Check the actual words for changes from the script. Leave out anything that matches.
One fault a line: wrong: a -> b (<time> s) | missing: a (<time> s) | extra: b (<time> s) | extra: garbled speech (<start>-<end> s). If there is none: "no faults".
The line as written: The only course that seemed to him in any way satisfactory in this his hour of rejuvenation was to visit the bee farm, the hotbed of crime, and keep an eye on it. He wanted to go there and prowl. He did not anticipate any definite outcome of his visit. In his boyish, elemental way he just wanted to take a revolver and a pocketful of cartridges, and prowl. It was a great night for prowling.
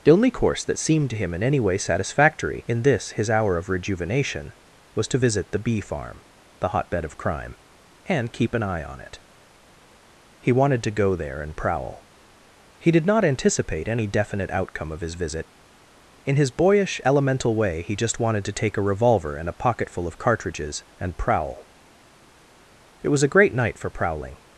no faults